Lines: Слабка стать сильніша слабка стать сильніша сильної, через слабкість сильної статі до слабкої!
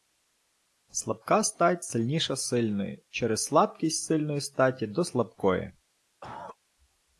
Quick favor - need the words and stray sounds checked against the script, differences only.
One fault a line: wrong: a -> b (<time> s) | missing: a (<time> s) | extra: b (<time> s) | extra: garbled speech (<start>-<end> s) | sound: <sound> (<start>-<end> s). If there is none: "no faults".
missing: слабка стать сильніша (2.4 s)
sound: cough (6.2-6.6 s)